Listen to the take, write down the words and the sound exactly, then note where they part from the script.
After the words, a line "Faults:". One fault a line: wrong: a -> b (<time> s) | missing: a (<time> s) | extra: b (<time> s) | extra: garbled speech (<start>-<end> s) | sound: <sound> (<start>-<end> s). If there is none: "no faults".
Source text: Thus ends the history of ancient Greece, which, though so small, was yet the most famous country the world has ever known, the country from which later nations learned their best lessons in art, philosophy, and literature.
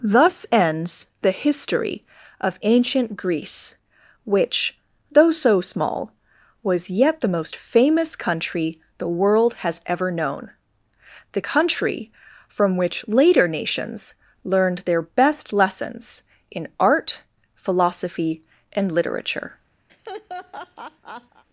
Thus ends the history of ancient Greece, which, though so small, was yet the most famous country the world has ever known, the country from which later nations learned their best lessons in art, philosophy, and literature.
Faults:
sound: laugh (19.9-21.4 s)